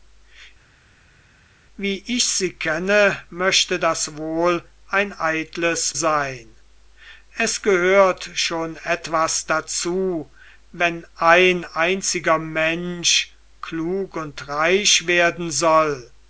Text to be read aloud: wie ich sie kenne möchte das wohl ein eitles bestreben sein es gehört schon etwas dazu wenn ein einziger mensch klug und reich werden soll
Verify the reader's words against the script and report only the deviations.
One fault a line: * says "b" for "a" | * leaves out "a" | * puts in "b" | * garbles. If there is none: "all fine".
* leaves out "bestreben"